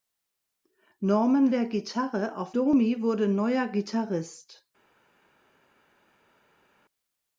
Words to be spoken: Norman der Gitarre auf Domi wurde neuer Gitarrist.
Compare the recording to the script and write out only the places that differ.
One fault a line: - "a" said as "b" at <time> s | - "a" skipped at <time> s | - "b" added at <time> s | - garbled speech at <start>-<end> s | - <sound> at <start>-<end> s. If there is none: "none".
none